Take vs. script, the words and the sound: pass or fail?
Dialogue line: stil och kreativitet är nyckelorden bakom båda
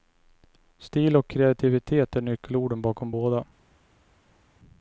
pass